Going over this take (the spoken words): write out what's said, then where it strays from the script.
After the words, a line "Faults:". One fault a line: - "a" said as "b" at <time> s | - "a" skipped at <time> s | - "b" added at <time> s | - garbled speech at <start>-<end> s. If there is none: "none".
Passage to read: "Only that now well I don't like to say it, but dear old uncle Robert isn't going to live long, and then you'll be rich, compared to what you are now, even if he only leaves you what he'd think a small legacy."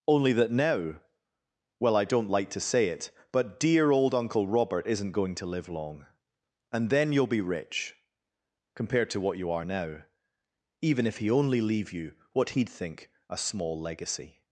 "Only that now well I don't like to say it, but dear old uncle Robert isn't going to live long, and then you'll be rich, compared to what you are now, even if he only leave you what he'd think a small legacy."
Faults:
- "leaves" said as "leave" at 11.6 s